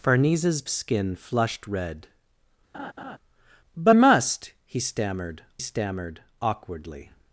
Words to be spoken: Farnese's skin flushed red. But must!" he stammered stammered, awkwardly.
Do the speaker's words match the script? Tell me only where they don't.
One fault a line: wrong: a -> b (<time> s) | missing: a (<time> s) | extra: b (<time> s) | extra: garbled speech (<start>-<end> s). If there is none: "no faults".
no faults